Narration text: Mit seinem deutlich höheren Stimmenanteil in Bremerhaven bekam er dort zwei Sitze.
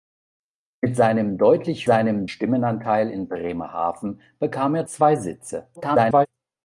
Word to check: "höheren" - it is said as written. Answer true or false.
false